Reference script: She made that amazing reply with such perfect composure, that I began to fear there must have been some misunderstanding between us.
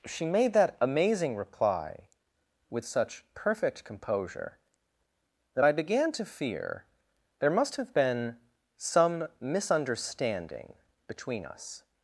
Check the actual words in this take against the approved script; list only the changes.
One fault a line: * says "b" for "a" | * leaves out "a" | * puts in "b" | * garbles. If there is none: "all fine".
all fine